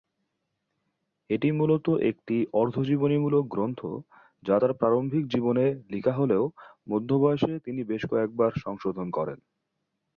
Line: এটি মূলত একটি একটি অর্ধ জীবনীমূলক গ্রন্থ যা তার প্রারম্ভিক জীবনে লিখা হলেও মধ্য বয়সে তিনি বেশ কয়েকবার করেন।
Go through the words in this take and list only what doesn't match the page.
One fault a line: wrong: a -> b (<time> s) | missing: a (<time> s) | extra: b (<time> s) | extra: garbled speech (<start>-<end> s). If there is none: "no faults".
missing: একটি (2.4 s)
extra: সংশোধন (8.6 s)